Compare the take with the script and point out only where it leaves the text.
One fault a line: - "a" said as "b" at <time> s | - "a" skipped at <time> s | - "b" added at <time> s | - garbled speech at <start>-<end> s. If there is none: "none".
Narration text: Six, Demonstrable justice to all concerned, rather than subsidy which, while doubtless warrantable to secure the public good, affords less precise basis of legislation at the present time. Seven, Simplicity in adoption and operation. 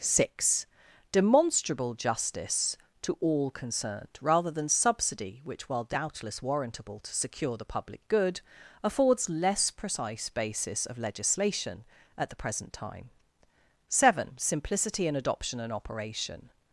none